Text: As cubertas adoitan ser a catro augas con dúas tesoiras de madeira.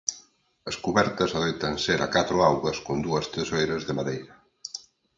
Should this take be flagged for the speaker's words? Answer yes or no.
no